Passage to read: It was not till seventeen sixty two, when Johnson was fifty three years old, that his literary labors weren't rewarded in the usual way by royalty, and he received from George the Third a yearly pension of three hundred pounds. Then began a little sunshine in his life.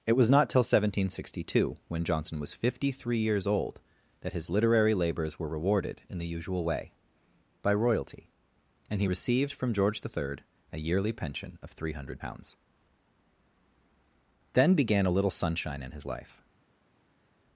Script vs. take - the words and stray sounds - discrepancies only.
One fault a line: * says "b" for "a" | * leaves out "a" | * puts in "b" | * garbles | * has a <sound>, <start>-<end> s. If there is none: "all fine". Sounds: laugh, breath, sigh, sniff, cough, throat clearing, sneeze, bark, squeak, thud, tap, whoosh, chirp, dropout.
* says "were" for "weren't"